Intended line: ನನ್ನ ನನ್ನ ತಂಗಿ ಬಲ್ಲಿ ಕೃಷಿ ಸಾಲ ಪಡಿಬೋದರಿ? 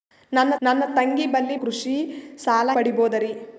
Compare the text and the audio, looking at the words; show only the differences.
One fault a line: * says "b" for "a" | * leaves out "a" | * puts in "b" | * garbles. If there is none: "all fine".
all fine